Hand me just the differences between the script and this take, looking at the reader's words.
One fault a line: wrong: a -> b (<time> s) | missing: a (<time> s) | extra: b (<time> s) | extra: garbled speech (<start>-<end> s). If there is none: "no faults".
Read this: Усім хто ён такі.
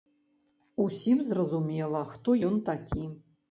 extra: зразумела (1.3 s)